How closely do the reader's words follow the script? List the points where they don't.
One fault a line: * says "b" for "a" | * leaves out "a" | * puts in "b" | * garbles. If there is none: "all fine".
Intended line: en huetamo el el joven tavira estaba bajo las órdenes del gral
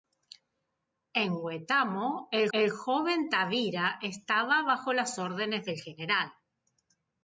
all fine